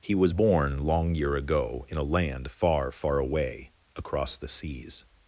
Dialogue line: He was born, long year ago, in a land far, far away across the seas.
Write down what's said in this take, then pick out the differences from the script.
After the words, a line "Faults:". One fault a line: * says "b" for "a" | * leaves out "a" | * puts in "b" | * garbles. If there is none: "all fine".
He was born, long year ago, in a land far, far away across the seas.
Faults:
all fine